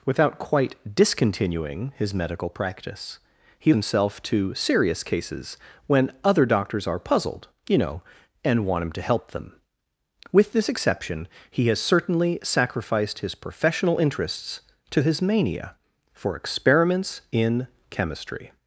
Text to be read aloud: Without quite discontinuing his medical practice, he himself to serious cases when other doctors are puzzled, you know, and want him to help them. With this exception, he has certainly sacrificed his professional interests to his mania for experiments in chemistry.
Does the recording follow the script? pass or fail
pass